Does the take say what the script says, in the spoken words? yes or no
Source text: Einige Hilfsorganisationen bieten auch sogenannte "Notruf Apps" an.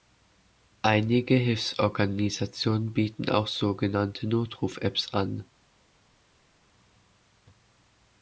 yes